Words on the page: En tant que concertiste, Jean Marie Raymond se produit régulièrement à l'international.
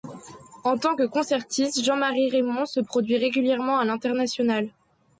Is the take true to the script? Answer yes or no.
yes